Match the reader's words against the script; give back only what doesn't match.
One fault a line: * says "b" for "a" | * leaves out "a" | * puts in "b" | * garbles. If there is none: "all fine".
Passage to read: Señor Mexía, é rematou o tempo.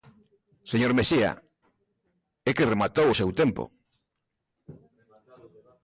* puts in "que"
* puts in "seu"